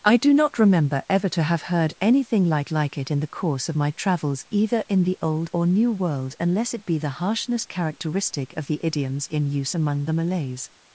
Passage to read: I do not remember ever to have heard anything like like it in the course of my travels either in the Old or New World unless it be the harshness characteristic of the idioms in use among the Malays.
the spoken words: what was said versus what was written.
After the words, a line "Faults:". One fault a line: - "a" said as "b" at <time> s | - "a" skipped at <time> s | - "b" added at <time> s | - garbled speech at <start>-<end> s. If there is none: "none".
I do not remember ever to have heard anything like like it in the course of my travels either in the Old or New World unless it be the harshness characteristic of the idioms in use among the Malays.
Faults:
none